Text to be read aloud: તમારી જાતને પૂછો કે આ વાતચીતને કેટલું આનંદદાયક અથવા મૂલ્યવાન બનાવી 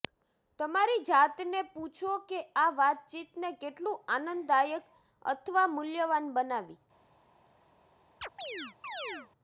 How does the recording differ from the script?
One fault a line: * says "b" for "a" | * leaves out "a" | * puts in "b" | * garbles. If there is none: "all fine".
all fine